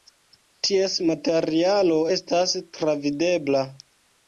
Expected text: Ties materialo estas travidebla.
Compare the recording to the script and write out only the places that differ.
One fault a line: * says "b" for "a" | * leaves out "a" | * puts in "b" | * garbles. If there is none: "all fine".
all fine